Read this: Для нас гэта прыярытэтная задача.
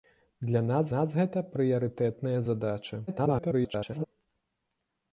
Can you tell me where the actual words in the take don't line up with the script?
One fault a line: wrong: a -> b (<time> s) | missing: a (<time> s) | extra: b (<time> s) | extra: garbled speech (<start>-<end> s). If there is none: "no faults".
extra: нас (0.9 s)
extra: garbled speech (3.1-4.1 s)